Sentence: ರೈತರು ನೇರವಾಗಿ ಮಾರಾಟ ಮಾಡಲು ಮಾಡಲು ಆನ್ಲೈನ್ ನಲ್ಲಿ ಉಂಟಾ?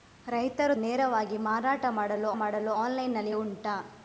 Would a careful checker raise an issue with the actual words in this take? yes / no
no